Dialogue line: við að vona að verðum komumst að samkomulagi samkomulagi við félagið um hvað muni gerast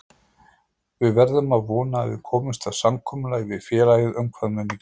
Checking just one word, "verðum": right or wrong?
wrong